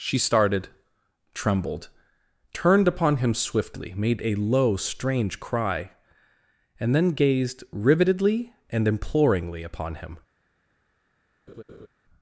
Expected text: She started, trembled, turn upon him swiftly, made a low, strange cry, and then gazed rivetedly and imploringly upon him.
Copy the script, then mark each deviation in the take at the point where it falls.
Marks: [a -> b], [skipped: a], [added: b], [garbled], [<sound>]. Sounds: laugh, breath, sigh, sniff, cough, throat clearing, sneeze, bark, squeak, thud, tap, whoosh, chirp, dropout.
She started, trembled, [turn -> turned] upon him swiftly, made a low, strange cry, and then gazed rivetedly and imploringly upon him. [laugh]